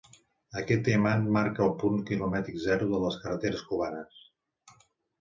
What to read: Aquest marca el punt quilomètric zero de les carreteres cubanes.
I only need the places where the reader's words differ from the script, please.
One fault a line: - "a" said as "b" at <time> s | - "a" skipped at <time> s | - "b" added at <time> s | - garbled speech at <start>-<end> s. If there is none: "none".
- "diamant" added at 0.9 s